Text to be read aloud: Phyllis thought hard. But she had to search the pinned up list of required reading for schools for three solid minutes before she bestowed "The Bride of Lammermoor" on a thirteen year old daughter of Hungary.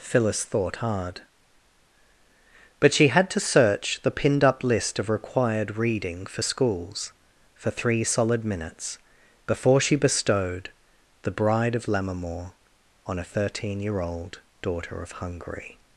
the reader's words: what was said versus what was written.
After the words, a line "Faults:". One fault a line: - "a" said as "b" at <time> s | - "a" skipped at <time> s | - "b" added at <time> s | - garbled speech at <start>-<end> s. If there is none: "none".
Phyllis thought hard. But she had to search the pinned up list of required reading for schools for three solid minutes before she bestowed "The Bride of Lammermoor" on a thirteen year old daughter of Hungary.
Faults:
none